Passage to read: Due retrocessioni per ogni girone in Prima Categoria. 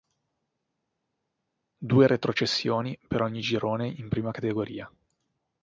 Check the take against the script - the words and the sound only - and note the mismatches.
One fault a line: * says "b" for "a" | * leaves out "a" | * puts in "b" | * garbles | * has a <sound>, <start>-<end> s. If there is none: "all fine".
all fine